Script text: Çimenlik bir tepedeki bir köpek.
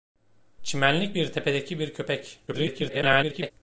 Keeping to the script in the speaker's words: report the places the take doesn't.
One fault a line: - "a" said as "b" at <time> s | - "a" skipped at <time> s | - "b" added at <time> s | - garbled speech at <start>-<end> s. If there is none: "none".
- garbled speech at 2.5-3.5 s